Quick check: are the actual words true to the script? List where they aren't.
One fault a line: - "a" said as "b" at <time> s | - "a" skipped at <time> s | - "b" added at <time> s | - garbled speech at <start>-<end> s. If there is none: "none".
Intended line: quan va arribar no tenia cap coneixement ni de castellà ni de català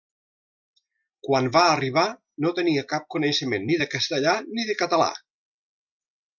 none